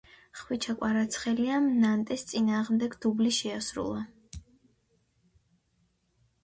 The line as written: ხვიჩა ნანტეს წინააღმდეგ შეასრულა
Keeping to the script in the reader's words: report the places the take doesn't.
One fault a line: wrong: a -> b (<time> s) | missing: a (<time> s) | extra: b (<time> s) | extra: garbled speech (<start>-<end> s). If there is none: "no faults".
extra: კვარაცხელიამ (0.8 s)
extra: დუბლი (3.1 s)